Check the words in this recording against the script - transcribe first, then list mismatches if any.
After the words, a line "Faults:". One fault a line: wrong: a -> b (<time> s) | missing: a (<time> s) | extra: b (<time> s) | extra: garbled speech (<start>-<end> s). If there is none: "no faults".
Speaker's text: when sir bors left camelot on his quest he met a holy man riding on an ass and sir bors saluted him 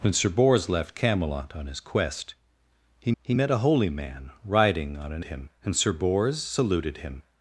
when sir bors left camelot on his quest he he met a holy man riding on an him and sir bors saluted him
Faults:
extra: he (3.2 s)
wrong: ass -> him (5.2 s)